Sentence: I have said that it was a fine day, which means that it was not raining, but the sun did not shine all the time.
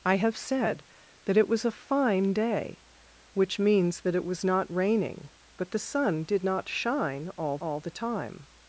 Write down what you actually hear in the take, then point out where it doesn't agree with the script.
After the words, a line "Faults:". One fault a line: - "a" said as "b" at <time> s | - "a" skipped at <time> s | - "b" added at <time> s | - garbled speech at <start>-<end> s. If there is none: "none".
I have said that it was a fine day, which means that it was not raining, but the sun did not shine all all the time.
Faults:
- "all" added at 7.6 s